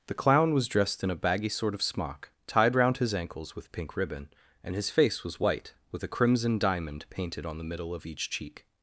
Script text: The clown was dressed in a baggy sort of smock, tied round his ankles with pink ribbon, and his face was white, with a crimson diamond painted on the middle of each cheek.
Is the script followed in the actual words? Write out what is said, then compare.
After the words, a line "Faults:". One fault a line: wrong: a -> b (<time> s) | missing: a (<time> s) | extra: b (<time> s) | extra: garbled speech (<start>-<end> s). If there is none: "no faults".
The clown was dressed in a baggy sort of smock, tied round his ankles with pink ribbon, and his face was white, with a crimson diamond painted on the middle of each cheek.
Faults:
no faults